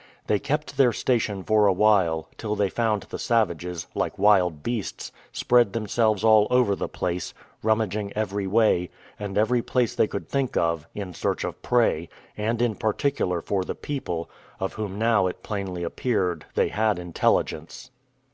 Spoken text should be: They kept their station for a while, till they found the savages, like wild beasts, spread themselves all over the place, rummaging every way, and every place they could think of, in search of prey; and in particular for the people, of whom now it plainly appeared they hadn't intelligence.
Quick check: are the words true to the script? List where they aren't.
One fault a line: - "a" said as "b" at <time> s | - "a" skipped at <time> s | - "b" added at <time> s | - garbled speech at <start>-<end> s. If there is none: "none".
- "hadn't" said as "had" at 16.7 s